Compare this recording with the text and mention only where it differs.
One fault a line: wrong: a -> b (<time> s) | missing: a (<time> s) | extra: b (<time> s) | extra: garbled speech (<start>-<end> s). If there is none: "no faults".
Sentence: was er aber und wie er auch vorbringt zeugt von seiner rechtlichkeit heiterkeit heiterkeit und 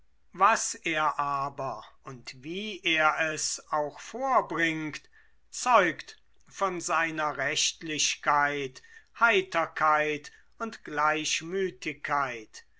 extra: es (3.3 s)
missing: heiterkeit (10.3 s)